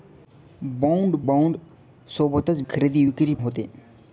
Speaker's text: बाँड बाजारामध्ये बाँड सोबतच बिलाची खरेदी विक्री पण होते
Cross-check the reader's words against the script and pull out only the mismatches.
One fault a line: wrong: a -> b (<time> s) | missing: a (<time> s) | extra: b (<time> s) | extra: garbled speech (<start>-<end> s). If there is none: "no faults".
missing: बाजारामध्ये (1.1 s)
missing: बिलाची (2.6 s)
missing: पण (3.3 s)